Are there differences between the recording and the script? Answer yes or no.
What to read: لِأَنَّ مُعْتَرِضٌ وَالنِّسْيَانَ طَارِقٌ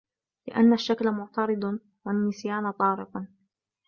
yes